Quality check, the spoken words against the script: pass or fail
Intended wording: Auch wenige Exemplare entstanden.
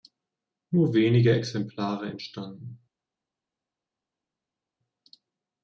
fail